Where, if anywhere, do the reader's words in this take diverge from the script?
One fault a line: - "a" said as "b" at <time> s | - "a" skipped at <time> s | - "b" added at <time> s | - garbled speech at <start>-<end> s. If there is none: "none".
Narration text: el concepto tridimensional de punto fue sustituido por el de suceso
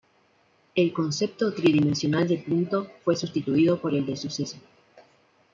none